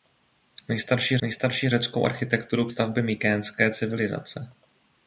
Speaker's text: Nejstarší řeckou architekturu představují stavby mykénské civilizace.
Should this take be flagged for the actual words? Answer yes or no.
yes